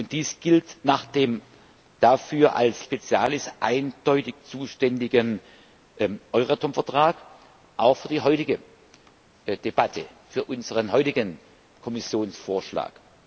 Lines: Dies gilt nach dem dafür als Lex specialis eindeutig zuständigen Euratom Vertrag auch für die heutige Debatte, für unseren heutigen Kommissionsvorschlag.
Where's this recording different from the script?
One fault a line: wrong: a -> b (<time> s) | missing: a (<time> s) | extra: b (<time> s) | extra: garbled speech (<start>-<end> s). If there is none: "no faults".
missing: Lex (2.9 s)